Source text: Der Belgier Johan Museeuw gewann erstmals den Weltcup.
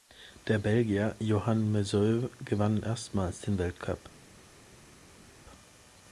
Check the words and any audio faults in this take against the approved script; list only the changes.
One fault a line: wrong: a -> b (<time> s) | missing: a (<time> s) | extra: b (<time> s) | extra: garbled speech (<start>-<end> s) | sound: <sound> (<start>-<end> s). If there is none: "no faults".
no faults